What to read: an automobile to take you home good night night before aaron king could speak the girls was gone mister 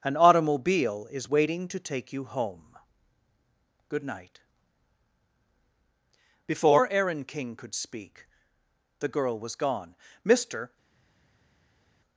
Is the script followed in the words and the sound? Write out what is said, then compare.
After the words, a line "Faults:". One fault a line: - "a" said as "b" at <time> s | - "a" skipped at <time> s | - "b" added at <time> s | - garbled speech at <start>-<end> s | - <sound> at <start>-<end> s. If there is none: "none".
an automobile is waiting to take you home good night before aaron king could speak the girl was gone mister
Faults:
- "is waiting" added at 1.1 s
- "night" skipped at 4.4 s
- "girls" said as "girl" at 9.1 s